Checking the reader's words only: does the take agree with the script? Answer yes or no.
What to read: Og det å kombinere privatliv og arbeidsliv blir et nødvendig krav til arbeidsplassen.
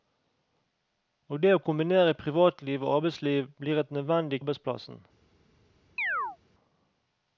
no